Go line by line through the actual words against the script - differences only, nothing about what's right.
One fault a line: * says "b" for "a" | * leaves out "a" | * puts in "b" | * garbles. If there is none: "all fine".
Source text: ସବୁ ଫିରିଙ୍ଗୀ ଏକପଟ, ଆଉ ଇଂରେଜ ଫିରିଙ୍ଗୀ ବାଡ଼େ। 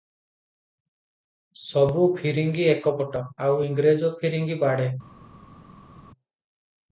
all fine